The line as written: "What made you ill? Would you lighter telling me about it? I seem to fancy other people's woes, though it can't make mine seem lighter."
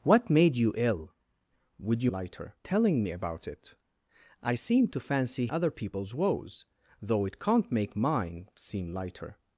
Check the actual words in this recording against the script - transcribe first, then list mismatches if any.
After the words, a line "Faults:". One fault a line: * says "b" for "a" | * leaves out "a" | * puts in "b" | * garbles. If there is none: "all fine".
"What made you ill? Would you lighter telling me about it? I seem to fancy other people's woes, though it can't make mine seem lighter."
Faults:
all fine